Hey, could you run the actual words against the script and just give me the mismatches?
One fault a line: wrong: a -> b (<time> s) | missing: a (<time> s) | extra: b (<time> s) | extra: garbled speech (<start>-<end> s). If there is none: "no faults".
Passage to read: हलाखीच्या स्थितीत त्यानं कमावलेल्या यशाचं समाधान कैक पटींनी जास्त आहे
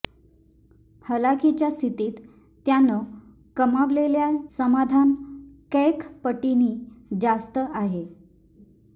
missing: यशाचं (4.3 s)